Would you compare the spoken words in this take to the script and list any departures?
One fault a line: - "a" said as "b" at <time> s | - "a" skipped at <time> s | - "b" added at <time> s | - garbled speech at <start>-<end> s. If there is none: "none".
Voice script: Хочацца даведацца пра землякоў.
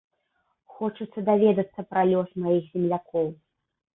- "лёс маіх" added at 2.1 s